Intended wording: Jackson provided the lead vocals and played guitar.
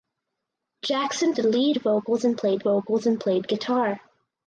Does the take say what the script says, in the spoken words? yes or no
no